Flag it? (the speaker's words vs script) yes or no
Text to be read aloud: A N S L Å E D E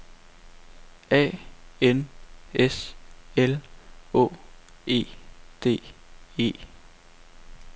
no